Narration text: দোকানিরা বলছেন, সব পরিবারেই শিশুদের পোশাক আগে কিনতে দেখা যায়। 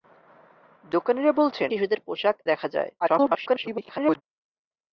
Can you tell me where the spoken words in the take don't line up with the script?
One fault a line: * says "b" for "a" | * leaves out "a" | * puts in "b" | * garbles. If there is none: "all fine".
* leaves out "সব পরিবারেই"
* leaves out "আগে কিনতে"
* garbles